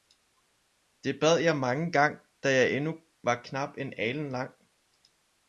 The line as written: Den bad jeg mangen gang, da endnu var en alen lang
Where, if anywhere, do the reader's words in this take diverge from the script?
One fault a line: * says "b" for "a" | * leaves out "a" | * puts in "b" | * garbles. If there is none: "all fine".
* says "Det" for "Den"
* puts in "jeg"
* puts in "knap"